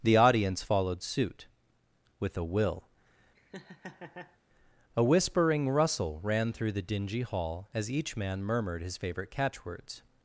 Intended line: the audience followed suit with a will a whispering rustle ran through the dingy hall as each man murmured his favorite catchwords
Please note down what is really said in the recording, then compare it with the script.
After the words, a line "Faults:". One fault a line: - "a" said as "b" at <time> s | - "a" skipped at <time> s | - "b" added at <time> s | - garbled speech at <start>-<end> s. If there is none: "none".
the audience followed suit with a will a whispering rustle ran through the dingy hall as each man murmured his favorite catchwords
Faults:
none